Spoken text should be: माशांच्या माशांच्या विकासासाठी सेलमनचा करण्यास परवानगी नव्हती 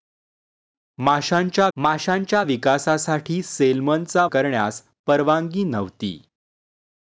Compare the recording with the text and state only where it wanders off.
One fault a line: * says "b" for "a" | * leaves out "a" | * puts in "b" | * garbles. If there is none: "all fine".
all fine